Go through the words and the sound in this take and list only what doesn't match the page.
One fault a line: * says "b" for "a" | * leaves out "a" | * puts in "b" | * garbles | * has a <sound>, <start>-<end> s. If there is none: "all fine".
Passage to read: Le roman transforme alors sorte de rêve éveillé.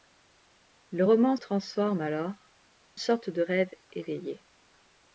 all fine